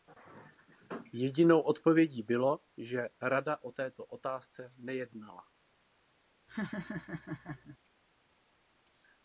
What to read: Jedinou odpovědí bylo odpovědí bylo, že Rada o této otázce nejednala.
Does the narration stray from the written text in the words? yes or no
yes